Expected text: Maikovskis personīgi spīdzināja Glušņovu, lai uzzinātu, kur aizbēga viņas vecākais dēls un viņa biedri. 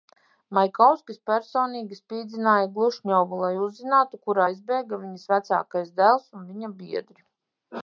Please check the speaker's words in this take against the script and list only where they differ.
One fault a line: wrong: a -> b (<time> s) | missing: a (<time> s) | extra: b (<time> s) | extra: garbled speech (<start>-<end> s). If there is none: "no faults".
no faults